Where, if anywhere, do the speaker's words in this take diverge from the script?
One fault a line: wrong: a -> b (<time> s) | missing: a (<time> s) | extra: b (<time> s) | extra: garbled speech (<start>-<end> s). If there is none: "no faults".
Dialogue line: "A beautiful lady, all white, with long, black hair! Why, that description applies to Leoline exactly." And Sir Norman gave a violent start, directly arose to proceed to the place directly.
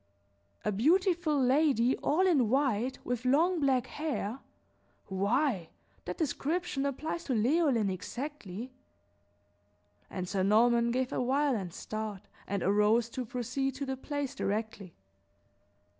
extra: in (2.2 s)
wrong: directly -> and (12.5 s)